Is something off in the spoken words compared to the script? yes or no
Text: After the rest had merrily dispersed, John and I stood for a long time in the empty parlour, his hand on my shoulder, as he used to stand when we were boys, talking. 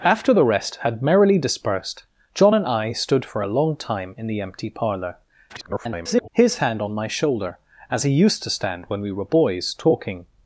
yes